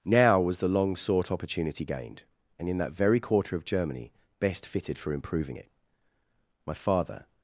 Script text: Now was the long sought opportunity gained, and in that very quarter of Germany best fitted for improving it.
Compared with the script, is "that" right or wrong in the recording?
right